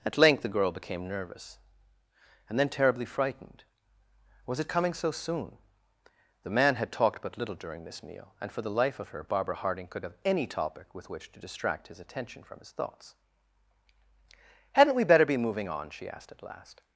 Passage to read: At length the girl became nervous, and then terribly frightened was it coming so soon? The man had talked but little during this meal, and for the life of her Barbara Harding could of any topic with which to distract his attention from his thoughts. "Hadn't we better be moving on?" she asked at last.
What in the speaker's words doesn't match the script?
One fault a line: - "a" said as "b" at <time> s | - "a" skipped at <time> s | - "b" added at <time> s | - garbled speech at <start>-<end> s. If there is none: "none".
none